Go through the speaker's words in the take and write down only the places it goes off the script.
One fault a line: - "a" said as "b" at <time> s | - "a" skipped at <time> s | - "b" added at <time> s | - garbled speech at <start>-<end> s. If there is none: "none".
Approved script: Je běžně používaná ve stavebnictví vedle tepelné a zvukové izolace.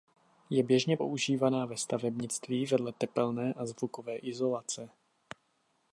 none